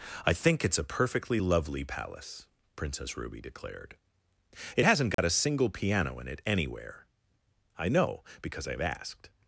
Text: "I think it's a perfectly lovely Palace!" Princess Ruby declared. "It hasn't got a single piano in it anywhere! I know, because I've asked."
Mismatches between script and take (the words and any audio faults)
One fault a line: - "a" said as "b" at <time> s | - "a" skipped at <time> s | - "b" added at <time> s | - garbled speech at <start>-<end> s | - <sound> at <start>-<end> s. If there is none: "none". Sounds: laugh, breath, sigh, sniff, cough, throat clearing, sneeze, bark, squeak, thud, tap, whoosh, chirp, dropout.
- dropout at 5.1-5.2 s